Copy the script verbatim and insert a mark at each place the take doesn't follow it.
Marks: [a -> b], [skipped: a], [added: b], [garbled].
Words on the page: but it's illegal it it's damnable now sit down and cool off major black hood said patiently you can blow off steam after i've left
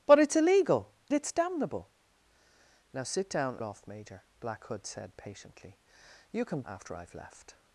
but it's illegal [skipped: it] it's damnable now sit down [skipped: and cool] off major black hood said patiently you can [skipped: blow off steam] after i've left